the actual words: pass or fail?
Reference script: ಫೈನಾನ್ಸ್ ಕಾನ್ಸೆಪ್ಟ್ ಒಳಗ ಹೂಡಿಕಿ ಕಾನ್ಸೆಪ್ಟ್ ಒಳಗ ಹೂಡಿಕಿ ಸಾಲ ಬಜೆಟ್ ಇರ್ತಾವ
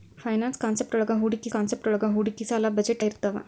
pass